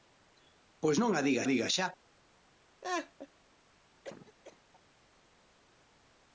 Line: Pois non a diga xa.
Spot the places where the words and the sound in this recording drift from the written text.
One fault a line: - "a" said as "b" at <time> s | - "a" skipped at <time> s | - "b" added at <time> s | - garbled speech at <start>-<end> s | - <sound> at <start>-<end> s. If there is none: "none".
- "diga" added at 1.5 s
- laugh at 2.8-3.3 s
- cough at 4.0-4.6 s